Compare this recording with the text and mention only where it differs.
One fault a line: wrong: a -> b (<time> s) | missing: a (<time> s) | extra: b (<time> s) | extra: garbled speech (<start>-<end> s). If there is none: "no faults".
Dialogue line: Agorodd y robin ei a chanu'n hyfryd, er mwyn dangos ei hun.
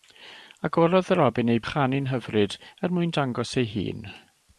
no faults